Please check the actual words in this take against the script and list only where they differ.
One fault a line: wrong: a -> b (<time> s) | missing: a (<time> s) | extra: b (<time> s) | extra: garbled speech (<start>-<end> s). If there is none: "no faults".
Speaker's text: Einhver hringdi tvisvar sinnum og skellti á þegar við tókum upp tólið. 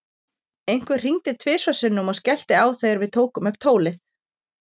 no faults